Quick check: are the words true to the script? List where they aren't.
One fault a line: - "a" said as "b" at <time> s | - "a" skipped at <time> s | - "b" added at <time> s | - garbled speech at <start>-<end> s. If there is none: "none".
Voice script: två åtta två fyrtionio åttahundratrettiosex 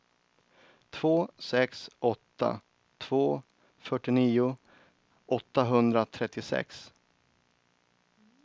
- "sex" added at 1.4 s